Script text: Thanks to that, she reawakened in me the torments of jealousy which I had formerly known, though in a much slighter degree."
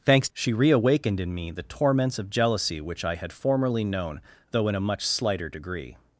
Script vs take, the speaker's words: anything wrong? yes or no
yes